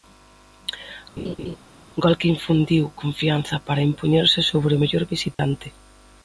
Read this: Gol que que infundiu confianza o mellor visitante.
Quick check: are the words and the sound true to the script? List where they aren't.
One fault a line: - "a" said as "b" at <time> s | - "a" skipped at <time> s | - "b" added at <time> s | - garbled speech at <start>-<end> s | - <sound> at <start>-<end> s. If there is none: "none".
- laugh at 1.2-1.6 s
- "que" skipped at 2.3 s
- "para impoñerse sobre" added at 3.7 s
- dropout at 5.3-5.4 s